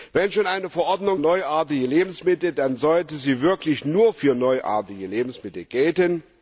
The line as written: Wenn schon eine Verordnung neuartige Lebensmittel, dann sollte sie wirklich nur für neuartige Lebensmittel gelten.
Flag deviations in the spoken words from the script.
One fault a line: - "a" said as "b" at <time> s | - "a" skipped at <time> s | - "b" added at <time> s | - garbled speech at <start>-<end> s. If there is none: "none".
none